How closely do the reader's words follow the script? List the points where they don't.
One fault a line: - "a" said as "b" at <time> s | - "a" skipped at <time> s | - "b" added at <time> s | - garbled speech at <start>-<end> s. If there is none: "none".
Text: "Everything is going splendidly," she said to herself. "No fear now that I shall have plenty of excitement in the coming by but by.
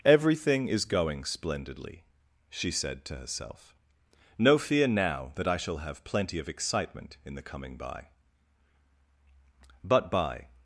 none